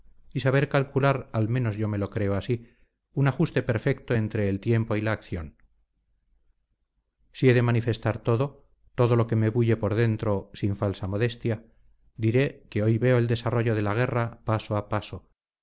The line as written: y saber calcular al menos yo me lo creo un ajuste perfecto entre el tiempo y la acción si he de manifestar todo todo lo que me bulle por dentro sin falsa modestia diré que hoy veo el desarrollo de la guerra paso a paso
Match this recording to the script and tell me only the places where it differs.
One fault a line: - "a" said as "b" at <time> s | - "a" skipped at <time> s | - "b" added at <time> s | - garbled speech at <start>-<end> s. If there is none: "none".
- "así" added at 2.4 s